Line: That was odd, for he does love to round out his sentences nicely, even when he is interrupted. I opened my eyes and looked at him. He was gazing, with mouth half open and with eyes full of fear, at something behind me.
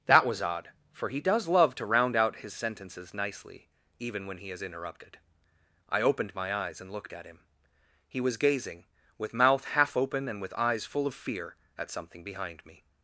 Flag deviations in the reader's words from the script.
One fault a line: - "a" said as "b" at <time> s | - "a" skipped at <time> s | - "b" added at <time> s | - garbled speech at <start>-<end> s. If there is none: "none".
none